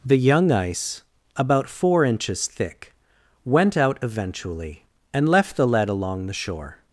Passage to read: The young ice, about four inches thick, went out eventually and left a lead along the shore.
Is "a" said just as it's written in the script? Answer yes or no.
no